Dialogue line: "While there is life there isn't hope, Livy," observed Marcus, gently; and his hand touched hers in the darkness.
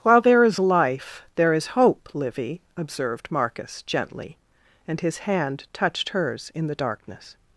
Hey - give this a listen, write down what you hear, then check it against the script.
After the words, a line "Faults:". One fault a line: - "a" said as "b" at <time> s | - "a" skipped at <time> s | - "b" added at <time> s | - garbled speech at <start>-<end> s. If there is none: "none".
"While there is life there is hope, Livy," observed Marcus, gently; and his hand touched hers in the darkness.
Faults:
- "isn't" said as "is" at 1.5 s